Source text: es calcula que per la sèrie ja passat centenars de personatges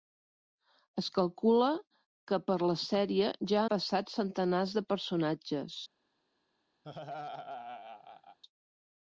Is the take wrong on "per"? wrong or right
right